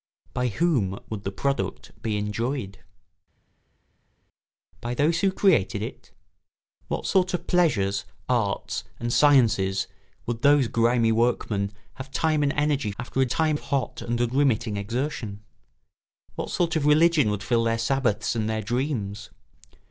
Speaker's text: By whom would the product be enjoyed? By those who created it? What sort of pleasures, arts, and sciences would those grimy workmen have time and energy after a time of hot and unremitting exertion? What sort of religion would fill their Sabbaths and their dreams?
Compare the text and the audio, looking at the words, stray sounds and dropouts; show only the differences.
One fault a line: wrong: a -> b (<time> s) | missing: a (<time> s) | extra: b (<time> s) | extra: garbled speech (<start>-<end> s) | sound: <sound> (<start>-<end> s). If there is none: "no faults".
no faults